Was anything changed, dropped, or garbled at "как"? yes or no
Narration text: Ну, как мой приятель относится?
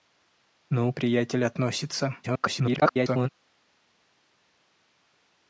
yes